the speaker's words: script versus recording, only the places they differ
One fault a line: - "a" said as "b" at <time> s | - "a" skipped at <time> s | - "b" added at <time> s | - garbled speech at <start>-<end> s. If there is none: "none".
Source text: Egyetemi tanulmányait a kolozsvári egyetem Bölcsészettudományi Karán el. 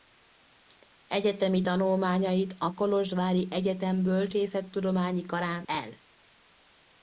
none